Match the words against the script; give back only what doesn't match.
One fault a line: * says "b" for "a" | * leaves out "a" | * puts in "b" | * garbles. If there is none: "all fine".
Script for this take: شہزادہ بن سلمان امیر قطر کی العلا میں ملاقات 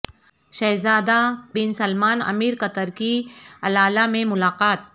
all fine